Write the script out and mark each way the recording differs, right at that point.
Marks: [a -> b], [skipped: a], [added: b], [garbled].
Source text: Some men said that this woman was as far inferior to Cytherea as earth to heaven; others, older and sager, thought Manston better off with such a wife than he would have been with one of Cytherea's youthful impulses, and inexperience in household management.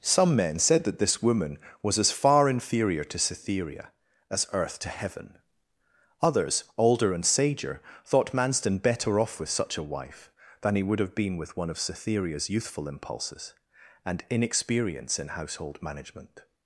Some men said that this woman was as far inferior to Cytherea as earth to heaven; others, older and sager, thought Manston better off with such a wife than he would have been with one of Cytherea's youthful impulses, and inexperience in household management.